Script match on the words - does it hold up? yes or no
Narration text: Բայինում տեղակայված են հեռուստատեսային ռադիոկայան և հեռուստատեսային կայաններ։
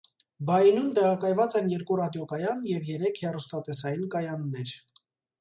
no